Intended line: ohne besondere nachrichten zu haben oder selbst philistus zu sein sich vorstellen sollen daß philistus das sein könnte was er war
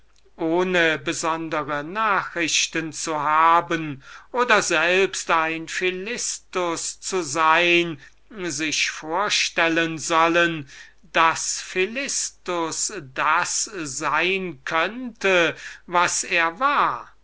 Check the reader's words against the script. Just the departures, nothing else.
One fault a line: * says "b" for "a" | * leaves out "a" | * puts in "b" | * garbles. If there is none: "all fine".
* puts in "ein"